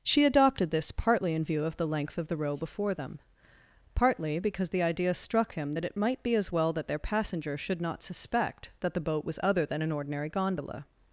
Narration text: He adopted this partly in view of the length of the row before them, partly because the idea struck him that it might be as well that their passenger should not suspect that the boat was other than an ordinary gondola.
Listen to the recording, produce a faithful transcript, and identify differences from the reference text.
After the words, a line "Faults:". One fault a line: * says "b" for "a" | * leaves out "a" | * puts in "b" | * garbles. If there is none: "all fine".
She adopted this partly in view of the length of the row before them, partly because the idea struck him that it might be as well that their passenger should not suspect that the boat was other than an ordinary gondola.
Faults:
* says "She" for "He"